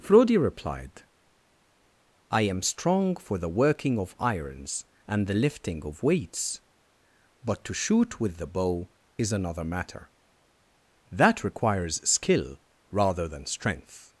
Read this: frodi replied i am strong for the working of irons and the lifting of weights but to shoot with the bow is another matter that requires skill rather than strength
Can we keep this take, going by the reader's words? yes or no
yes